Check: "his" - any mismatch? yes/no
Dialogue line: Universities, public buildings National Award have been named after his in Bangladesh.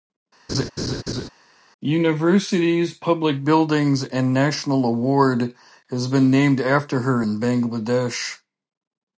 yes